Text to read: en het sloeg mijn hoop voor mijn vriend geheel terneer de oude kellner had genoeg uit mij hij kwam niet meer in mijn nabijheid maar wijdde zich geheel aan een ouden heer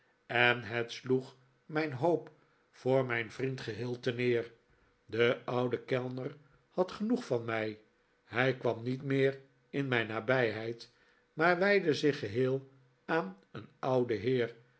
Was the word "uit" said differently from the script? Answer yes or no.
yes